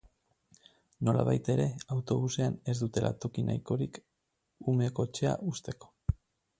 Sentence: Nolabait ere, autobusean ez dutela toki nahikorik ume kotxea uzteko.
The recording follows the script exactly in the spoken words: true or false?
true